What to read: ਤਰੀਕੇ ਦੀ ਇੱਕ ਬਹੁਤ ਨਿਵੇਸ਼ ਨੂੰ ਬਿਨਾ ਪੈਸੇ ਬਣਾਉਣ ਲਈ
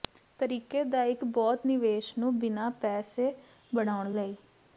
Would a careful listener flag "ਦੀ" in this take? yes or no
yes